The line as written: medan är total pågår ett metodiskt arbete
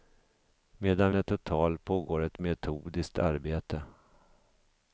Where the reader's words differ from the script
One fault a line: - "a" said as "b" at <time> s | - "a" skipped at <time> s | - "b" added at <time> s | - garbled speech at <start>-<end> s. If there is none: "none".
none